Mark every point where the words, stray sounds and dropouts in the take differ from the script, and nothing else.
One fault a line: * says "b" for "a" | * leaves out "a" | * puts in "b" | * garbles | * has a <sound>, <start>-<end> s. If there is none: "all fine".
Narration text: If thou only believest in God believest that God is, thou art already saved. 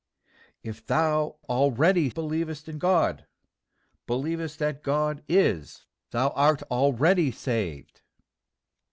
* says "already" for "only"